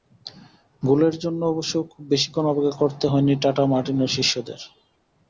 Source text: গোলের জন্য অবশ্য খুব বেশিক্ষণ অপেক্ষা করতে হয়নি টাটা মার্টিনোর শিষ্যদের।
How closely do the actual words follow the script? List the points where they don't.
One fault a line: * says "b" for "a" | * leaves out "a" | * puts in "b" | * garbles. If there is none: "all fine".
all fine